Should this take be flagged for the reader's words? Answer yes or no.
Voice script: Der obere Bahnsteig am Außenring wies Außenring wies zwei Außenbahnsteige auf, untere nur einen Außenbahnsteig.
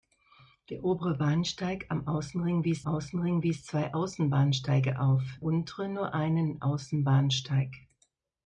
no